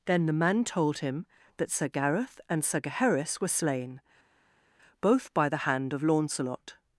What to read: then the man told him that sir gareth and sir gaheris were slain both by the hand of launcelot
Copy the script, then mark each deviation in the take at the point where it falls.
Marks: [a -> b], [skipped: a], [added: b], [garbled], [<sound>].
then the man told him that sir gareth and sir gaheris were slain both by the hand of launcelot